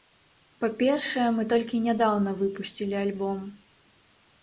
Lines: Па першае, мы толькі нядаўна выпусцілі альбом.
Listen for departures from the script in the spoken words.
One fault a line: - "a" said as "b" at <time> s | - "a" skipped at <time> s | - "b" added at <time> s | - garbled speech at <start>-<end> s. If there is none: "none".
none